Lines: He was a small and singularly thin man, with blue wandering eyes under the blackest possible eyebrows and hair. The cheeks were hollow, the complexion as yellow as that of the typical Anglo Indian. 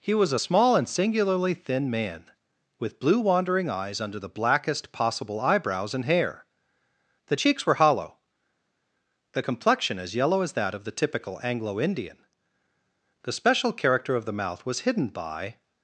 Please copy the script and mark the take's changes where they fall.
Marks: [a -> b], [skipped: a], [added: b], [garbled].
He was a small and singularly thin man, with blue wandering eyes under the blackest possible eyebrows and hair. The cheeks were hollow, the complexion as yellow as that of the typical Anglo Indian. [added: The special character of the mouth was hidden by]